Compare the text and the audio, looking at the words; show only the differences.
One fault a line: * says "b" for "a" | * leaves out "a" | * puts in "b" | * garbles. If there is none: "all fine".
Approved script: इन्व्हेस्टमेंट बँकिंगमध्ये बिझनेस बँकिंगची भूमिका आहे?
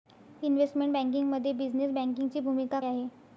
all fine